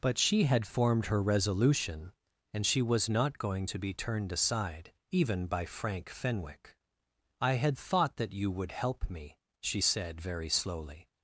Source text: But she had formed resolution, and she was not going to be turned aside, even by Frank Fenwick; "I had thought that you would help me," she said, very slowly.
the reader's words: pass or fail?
fail